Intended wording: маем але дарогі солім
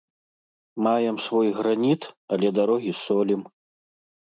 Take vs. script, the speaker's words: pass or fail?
fail